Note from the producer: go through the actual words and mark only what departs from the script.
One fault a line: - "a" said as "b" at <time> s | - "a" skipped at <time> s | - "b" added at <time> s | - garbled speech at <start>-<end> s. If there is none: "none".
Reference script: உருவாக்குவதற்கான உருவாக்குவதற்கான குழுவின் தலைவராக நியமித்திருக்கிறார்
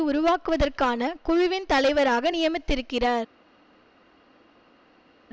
- "உருவாக்குவதற்கான" skipped at 1.1 s